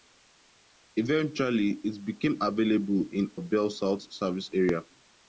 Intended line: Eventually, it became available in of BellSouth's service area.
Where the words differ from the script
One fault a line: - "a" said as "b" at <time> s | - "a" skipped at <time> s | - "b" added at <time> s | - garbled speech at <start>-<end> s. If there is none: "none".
none